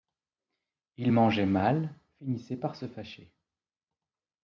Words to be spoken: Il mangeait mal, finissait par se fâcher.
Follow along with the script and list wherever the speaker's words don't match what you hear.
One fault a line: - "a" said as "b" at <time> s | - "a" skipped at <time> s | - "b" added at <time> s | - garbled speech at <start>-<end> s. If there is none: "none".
none